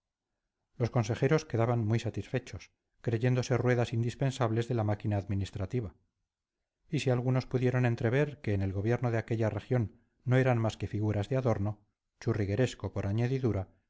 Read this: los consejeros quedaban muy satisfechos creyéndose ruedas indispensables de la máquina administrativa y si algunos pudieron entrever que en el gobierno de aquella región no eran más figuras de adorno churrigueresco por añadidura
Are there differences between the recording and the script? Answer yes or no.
yes